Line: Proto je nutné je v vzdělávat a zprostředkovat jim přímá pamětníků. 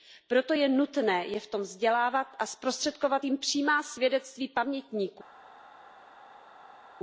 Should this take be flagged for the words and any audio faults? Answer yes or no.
yes